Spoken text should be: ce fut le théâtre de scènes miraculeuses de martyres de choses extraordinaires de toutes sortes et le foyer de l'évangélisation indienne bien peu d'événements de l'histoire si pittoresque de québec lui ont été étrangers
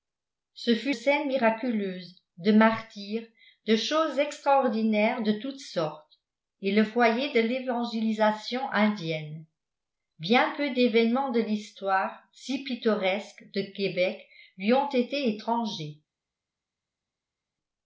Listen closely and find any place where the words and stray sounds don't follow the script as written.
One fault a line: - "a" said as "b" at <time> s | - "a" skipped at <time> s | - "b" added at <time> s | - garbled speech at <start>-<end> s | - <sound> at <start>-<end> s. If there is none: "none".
- "le théâtre de" skipped at 0.9 s